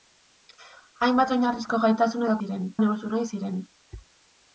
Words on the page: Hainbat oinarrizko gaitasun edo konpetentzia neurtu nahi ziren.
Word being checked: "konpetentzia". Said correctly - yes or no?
no